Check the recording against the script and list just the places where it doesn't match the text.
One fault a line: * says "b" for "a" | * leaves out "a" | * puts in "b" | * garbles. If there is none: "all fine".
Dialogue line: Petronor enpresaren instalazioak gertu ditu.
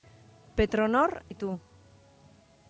* leaves out "enpresaren instalazioak gertu"